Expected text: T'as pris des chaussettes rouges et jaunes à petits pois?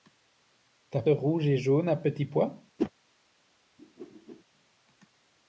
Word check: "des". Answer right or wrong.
wrong